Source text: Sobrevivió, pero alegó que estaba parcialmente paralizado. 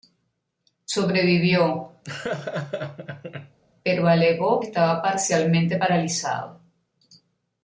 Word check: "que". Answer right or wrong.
wrong